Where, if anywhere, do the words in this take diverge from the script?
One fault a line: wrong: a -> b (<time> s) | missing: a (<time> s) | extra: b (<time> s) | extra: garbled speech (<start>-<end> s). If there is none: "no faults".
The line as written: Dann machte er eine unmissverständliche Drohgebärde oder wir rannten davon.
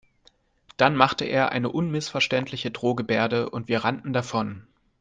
wrong: oder -> und (3.5 s)